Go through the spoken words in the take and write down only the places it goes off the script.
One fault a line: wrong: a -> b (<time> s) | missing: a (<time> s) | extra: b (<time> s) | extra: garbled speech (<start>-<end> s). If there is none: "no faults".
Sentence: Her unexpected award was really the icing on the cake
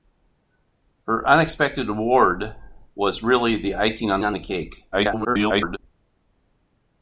extra: on (4.2 s)
extra: garbled speech (4.9-5.8 s)